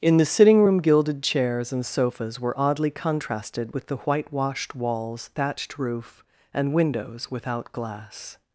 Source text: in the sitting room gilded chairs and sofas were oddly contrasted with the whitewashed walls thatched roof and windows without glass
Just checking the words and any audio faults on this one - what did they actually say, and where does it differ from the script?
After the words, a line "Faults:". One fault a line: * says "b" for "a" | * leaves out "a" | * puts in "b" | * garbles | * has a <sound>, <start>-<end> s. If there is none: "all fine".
in the sitting room gilded chairs and sofas were oddly contrasted with the whitewashed walls thatched roof and windows without glass
Faults:
all fine